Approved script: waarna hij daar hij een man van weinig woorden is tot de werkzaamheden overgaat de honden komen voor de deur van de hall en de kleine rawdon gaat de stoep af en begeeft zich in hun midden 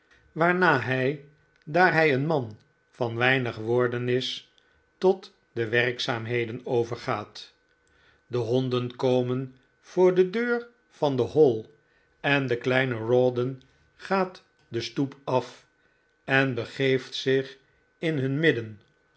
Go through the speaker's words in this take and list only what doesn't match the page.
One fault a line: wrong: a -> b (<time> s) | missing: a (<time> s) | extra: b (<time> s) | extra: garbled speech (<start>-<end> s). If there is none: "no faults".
no faults